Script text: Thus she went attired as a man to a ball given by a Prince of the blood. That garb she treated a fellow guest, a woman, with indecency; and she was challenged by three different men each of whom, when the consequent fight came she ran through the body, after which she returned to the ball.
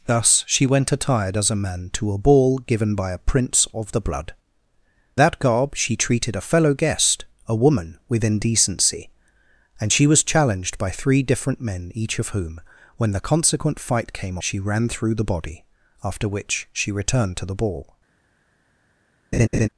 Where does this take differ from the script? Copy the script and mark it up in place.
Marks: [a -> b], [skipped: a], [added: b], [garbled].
Thus she went attired as a man to a ball given by a Prince of the blood. That garb she treated a fellow guest, a woman, with indecency; and she was challenged by three different men each of whom, when the consequent fight came she ran through the body, after which she returned to the ball.